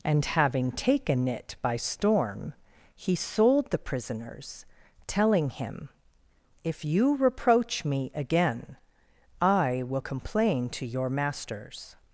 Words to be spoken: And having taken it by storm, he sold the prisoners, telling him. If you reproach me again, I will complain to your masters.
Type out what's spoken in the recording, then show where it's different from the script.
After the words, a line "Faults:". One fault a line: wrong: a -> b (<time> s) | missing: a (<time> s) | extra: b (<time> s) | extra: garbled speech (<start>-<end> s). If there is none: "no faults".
And having taken it by storm, he sold the prisoners, telling him. If you reproach me again, I will complain to your masters.
Faults:
no faults